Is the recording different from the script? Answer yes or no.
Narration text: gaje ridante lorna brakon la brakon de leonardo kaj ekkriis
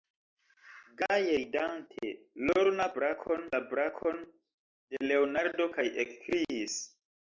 no